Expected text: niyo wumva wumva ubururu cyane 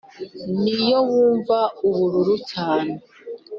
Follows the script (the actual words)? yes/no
no